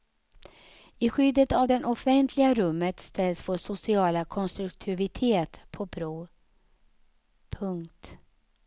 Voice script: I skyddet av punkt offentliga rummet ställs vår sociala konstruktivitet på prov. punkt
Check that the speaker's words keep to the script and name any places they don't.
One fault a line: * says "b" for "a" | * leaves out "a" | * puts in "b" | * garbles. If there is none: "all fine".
* says "det" for "punkt"